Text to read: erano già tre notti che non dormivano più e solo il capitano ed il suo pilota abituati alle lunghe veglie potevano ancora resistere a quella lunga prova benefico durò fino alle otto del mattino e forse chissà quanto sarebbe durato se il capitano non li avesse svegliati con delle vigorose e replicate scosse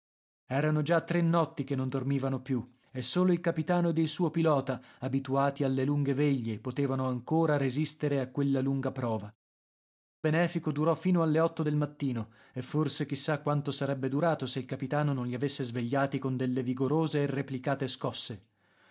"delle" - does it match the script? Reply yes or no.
yes